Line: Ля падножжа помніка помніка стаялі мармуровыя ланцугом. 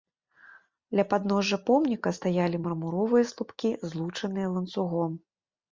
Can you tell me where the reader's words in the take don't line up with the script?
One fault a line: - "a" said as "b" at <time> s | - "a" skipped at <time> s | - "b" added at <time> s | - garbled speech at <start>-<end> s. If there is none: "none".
- "помніка" skipped at 2.1 s
- "слупкі злучаныя" added at 3.3 s